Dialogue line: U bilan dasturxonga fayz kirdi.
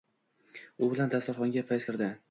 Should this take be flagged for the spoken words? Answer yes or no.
no